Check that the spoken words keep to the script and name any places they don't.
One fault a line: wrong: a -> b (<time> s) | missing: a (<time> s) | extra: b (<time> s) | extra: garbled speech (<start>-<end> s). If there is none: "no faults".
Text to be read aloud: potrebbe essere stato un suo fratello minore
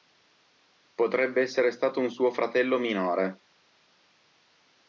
no faults